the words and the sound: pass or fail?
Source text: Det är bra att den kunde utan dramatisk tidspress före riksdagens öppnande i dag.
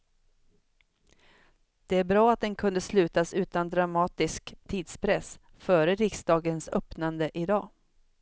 fail